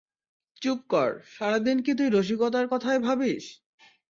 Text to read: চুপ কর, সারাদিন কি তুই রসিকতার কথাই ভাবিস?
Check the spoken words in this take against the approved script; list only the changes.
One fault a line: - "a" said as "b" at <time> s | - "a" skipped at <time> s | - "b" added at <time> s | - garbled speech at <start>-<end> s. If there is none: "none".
none